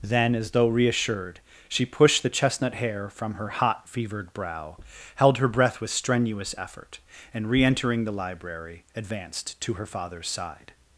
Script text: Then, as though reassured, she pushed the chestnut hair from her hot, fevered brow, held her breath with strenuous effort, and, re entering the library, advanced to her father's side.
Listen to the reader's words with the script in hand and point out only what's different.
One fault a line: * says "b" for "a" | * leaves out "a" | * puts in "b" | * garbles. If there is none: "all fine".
all fine